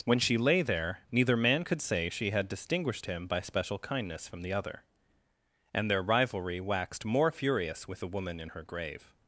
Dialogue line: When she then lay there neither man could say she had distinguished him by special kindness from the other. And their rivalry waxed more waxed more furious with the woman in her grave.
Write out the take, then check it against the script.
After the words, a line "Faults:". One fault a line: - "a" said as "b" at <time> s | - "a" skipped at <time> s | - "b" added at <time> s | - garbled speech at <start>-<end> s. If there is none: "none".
When she lay there neither man could say she had distinguished him by special kindness from the other. And their rivalry waxed more furious with the woman in her grave.
Faults:
- "then" skipped at 0.4 s
- "waxed more" skipped at 7.3 s